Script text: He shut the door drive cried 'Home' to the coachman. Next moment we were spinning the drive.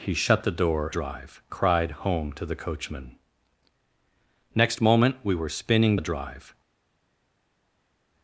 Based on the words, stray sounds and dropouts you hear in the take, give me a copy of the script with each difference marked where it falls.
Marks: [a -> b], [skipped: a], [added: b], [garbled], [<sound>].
He shut the door drive cried 'Home' to the coachman. Next moment we were spinning the drive.